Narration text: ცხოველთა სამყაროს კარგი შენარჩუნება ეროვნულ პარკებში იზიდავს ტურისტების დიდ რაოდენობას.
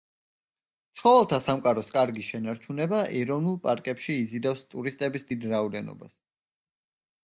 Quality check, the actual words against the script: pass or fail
pass